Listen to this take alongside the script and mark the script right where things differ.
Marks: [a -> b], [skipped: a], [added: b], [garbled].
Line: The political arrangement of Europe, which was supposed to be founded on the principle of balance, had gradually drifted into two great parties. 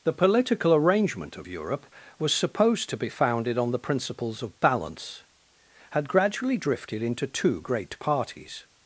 The political arrangement of Europe, [skipped: which] was supposed to be founded on the [principle -> principles] of balance, had gradually drifted into two great parties.